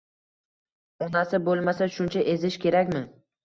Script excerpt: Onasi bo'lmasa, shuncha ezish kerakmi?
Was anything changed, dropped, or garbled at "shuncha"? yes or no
no